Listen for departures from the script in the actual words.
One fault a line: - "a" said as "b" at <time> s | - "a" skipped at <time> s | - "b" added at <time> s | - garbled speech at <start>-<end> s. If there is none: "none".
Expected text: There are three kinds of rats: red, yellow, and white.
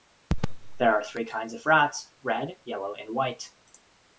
none